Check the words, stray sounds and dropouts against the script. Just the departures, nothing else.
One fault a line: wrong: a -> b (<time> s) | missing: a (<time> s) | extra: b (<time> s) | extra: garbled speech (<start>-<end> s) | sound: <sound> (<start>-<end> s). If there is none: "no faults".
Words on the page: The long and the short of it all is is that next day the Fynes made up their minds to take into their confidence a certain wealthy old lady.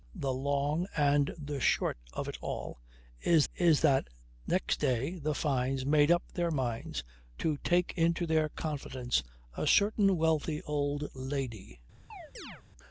sound: chirp (12.1-12.6 s)